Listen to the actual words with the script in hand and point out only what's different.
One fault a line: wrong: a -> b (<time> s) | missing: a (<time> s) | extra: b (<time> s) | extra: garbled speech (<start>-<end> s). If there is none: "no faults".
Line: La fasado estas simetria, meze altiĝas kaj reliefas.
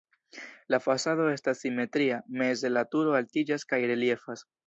extra: la turo (2.7 s)